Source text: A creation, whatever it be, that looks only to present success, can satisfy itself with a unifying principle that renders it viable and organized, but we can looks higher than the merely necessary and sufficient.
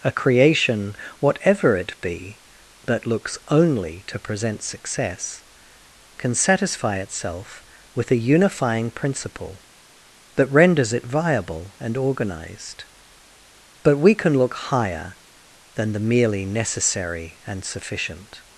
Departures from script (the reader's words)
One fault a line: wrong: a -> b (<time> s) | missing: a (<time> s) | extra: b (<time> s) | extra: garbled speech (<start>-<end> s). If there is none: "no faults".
wrong: looks -> look (14.4 s)